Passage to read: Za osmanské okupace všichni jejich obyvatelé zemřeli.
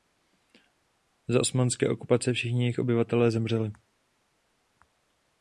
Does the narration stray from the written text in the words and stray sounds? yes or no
no